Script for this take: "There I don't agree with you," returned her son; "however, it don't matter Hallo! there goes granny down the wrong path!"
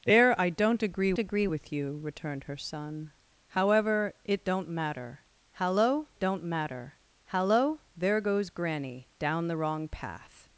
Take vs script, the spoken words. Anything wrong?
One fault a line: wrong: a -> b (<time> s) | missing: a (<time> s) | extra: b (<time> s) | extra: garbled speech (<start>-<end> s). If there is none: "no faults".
extra: agree (1.2 s)
extra: don't matter Hallo (6.2 s)